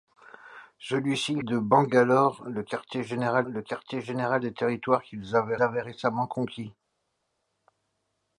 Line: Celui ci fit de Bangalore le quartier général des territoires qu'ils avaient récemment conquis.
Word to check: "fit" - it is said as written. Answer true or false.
false